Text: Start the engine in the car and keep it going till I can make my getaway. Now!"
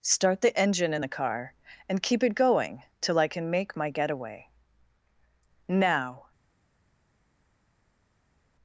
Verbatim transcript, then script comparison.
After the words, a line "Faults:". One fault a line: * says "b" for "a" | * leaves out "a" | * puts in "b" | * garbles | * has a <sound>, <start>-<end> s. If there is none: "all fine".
Start the engine in the car and keep it going till I can make my getaway. Now!"
Faults:
all fine